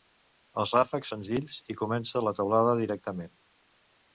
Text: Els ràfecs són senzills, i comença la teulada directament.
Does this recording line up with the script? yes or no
no